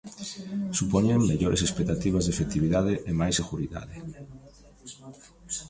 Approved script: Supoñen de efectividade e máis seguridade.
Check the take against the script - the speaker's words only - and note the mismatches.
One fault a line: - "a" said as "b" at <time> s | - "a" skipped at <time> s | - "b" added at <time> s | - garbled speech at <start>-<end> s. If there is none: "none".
- "mellores expectativas" added at 1.3 s